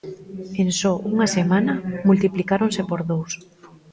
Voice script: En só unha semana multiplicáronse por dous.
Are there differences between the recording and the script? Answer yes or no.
no